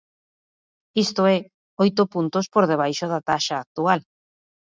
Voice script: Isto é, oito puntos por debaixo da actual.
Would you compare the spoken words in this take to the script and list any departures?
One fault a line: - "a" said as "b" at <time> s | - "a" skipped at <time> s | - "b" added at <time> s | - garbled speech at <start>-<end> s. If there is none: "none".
- "taxa" added at 3.3 s